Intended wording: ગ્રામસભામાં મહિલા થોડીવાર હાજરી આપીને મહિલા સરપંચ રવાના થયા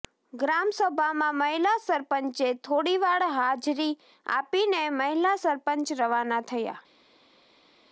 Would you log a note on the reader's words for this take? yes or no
yes